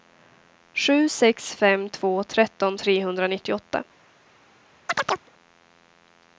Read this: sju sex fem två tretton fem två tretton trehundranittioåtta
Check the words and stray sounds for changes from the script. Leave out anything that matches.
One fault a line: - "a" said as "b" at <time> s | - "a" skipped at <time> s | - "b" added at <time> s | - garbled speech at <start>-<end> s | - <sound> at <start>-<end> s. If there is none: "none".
- "fem två tretton" skipped at 2.8 s
- chirp at 4.9-5.3 s